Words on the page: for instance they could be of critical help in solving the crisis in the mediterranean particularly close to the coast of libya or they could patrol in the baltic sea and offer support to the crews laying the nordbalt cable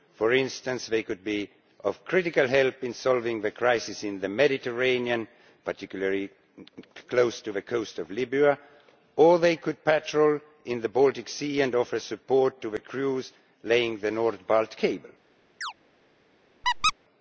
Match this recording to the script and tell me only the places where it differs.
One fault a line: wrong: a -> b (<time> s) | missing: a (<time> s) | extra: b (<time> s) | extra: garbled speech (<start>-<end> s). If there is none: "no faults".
no faults